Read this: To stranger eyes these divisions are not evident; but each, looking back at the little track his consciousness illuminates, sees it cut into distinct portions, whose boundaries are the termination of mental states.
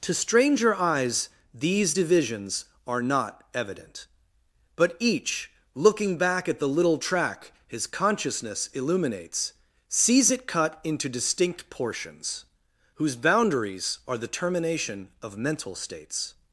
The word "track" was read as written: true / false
true